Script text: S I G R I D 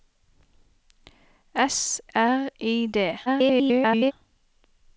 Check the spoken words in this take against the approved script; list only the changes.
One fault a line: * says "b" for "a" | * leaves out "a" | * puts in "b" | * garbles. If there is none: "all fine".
* leaves out "I G"
* garbles